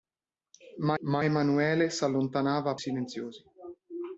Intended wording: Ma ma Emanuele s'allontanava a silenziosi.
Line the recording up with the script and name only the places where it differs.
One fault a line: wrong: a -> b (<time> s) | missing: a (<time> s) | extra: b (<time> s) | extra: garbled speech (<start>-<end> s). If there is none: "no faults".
no faults